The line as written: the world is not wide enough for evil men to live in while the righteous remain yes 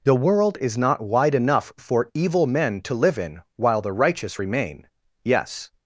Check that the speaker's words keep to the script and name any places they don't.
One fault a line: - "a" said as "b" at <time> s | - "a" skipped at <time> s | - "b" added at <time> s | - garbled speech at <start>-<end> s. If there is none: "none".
none